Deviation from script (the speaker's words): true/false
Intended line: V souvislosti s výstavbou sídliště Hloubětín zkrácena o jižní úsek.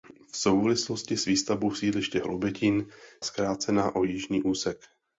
false